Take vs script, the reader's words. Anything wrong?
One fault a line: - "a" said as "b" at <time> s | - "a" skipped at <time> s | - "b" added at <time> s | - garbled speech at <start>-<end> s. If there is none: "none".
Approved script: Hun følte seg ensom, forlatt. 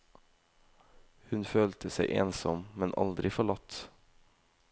- "men aldri" added at 2.8 s